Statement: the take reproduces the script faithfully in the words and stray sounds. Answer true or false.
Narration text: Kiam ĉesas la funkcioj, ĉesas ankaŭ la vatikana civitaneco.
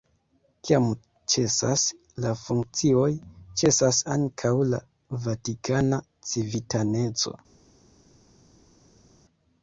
true